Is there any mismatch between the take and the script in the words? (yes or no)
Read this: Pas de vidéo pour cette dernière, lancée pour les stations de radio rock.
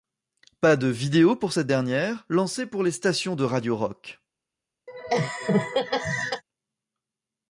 no